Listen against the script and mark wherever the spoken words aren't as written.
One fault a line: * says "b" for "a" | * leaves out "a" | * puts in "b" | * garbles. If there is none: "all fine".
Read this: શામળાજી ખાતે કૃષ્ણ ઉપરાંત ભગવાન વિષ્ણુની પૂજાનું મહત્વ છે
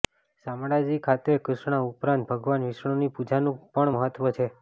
* puts in "પણ"